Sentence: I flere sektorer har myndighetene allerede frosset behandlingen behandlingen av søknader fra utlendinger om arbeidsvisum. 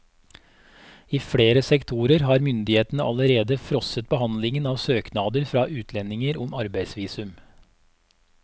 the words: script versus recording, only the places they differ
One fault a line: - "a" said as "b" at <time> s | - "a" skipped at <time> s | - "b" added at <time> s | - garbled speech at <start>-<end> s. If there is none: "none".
- "behandlingen" skipped at 4.7 s